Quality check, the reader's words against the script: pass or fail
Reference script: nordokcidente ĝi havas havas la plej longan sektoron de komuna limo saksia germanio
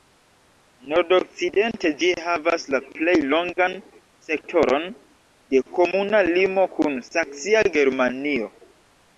fail